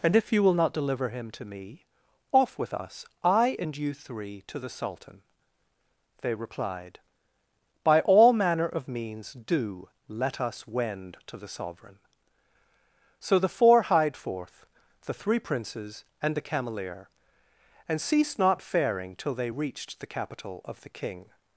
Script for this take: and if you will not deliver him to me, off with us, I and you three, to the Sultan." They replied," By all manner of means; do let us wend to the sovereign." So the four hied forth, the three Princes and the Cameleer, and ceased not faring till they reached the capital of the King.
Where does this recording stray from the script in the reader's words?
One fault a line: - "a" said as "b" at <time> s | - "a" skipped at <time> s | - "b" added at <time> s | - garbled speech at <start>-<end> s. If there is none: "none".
none